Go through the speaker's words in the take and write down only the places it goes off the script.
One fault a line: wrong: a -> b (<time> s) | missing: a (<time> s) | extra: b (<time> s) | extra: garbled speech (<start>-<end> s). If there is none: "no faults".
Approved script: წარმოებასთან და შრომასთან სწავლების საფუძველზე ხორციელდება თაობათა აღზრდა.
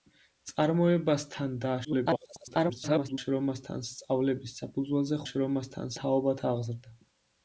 extra: garbled speech (1.8-3.2 s)
wrong: ხორციელდება -> შრომასთან (5.3 s)